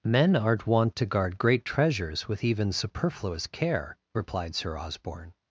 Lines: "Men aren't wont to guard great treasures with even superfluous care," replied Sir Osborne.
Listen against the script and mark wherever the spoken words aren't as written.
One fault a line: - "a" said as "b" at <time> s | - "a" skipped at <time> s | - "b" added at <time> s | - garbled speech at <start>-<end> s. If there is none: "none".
none